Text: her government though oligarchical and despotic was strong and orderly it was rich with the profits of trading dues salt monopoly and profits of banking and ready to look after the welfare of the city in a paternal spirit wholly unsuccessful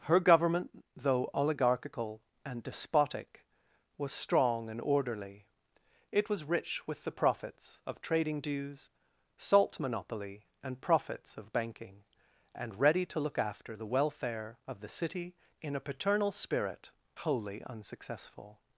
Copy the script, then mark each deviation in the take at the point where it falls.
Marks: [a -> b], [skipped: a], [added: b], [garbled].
her government though oligarchical and despotic was strong and orderly it was rich with the profits of trading dues salt monopoly and profits of banking and ready to look after the welfare of the city in a paternal spirit wholly unsuccessful